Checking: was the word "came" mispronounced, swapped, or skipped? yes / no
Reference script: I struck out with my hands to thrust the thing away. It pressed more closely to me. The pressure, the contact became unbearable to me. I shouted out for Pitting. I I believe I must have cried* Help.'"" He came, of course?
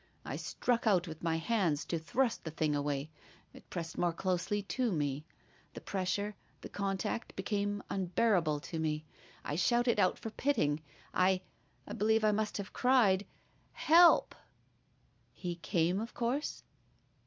no